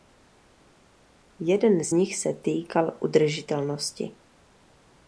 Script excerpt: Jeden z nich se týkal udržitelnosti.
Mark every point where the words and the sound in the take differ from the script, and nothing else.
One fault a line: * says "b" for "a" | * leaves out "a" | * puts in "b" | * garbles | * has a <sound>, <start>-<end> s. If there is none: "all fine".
all fine